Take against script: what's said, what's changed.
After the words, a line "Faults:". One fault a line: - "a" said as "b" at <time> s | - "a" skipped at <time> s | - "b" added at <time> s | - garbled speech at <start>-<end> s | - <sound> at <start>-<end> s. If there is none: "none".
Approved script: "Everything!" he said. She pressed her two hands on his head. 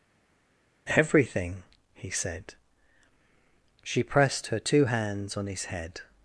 "Everything!" he said. She pressed her two hands on his head.
Faults:
none